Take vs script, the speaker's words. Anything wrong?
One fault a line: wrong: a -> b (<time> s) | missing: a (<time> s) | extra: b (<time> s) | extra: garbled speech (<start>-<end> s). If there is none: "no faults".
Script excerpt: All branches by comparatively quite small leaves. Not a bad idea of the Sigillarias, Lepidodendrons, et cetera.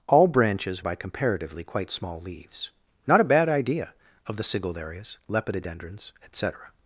no faults